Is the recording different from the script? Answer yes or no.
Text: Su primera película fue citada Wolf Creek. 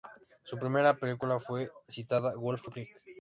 yes